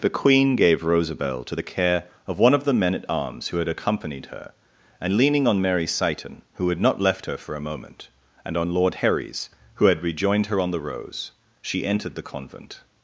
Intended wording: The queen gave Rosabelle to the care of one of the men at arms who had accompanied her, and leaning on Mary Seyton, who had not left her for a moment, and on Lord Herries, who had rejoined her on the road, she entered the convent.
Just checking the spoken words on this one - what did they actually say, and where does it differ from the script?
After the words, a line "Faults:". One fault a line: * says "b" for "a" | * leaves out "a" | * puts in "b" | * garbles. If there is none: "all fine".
The queen gave Rosabelle to the care of one of the men at arms who had accompanied her, and leaning on Mary Seyton, who had not left her for a moment, and on Lord Herries, who had rejoined her on the rose, she entered the convent.
Faults:
* says "rose" for "road"